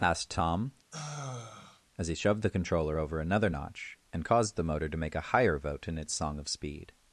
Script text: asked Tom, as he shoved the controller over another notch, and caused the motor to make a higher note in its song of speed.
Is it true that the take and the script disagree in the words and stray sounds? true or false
true